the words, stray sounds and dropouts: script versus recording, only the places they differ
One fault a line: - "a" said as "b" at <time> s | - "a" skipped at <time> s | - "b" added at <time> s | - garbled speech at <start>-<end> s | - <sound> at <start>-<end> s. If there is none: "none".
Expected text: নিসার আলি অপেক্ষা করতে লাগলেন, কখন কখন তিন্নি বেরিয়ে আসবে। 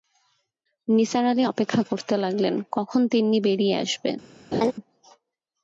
- "কখন" skipped at 3.0 s
- laugh at 4.5-4.7 s